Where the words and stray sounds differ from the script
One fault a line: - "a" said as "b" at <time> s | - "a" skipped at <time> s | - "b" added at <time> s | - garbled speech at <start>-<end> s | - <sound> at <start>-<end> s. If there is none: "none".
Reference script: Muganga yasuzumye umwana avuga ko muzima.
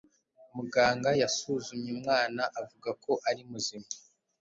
- "ari" added at 3.3 s